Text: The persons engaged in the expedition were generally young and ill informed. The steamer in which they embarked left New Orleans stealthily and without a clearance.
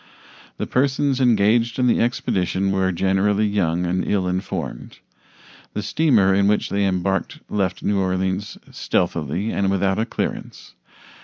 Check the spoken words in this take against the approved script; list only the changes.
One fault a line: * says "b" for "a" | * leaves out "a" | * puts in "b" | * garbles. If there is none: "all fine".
all fine